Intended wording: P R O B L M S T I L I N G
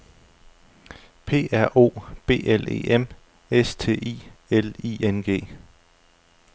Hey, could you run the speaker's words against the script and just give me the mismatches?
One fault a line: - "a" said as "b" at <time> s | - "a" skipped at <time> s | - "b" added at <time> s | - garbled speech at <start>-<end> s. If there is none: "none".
- "E" added at 2.7 s